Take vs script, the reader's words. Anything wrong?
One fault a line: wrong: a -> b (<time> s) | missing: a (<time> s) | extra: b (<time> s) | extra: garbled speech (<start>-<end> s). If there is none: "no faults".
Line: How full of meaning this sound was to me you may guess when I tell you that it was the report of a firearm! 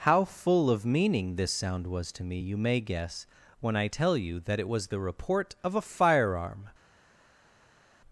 no faults